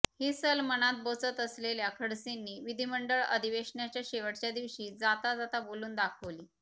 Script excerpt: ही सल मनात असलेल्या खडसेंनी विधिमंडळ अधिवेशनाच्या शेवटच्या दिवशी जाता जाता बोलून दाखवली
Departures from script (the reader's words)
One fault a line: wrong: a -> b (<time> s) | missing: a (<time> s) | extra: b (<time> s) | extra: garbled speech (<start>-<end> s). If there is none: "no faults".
extra: बोचत (1.0 s)